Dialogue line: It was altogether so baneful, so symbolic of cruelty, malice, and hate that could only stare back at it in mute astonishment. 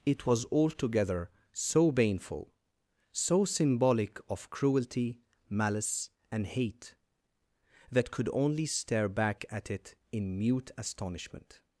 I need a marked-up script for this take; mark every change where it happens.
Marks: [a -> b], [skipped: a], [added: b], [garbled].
It was altogether so baneful, so symbolic of cruelty, malice, and hate that could only stare back at it in mute astonishment.